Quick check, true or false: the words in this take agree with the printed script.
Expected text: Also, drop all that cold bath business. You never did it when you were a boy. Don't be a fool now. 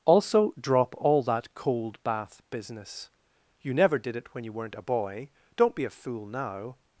false